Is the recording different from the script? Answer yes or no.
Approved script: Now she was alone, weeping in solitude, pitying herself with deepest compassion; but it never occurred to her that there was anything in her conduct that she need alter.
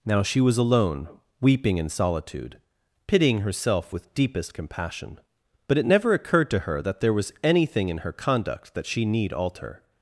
no